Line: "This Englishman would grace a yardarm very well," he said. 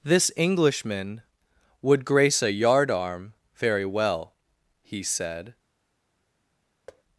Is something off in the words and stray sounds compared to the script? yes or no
yes